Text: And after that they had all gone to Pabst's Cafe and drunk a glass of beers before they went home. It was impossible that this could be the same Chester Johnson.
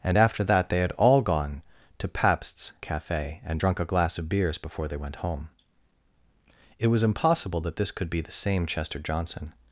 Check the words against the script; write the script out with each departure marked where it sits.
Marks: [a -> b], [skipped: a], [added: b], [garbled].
And after that they had all gone to Pabst's Cafe and drunk a glass of beers before they went home. It was impossible that this could be the same Chester Johnson.